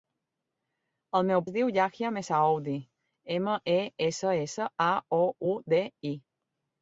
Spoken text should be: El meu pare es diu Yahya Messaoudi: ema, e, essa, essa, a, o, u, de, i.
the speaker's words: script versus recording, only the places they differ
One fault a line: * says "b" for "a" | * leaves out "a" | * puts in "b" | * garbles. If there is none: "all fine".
* leaves out "pare"